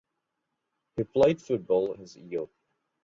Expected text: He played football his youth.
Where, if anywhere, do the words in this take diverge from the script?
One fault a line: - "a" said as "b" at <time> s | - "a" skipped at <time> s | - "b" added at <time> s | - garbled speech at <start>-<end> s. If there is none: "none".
none